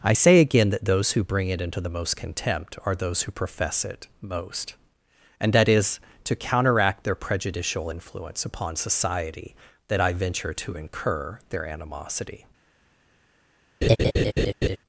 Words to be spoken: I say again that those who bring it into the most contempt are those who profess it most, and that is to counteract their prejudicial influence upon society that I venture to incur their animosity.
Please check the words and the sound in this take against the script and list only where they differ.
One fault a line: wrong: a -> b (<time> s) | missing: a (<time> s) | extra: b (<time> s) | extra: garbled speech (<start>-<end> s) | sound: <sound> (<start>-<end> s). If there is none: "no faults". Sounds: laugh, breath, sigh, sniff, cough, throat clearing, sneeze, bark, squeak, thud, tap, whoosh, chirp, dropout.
sound: laugh (13.8-14.8 s)